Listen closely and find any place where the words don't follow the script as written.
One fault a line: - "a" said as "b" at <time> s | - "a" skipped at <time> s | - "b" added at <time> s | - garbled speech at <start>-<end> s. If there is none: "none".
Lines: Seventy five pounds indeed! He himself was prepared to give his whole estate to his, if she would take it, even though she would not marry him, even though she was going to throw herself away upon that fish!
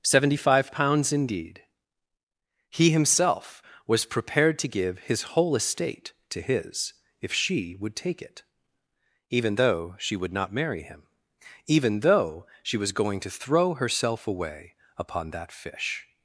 none